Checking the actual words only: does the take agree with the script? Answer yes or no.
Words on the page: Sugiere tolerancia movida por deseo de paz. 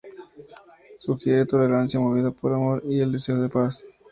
no